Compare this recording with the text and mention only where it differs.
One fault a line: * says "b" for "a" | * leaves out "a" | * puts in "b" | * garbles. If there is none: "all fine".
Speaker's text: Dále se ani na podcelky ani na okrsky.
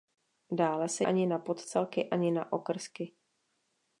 all fine